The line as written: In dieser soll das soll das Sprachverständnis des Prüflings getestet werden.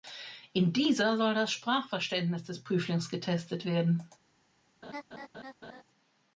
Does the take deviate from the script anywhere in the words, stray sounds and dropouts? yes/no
yes